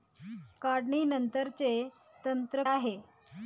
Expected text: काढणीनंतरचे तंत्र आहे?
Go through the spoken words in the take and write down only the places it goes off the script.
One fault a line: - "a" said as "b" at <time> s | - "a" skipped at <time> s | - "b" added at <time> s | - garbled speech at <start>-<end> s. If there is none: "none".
none